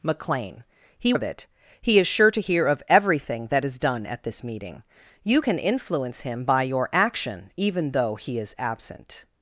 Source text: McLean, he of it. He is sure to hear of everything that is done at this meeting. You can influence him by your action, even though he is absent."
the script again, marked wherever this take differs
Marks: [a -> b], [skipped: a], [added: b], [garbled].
McLean, he of it. He is sure to hear of everything that is done at this meeting. You can influence him by your action, even though he is absent."